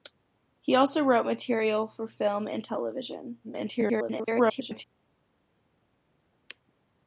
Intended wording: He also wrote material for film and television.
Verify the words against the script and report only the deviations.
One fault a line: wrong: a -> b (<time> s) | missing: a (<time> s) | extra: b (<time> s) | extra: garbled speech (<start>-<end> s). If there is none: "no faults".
extra: garbled speech (3.4-4.8 s)